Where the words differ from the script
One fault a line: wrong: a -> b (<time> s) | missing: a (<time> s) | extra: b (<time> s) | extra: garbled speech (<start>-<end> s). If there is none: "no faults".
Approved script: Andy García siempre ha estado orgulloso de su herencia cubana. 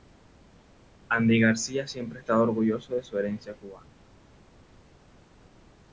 no faults